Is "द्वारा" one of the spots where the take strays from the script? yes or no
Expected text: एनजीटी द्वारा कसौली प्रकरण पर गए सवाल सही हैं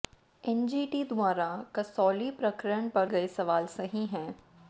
no